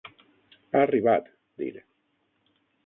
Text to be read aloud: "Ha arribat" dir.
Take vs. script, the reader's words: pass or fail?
pass